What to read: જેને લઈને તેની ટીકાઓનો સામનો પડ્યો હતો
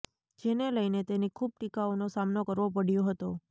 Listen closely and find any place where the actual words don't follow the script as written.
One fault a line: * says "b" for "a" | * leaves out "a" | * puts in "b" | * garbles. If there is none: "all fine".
* puts in "ખૂબ"
* puts in "કરવો"